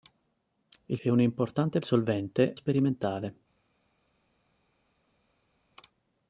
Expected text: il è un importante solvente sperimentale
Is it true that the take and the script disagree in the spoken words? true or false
false